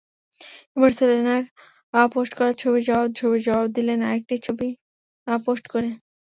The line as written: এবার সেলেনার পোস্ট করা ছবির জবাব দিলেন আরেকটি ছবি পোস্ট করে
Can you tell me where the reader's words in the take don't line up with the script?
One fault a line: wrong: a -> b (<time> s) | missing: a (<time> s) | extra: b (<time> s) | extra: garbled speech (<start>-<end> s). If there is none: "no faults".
extra: ছবির জবাব (3.2 s)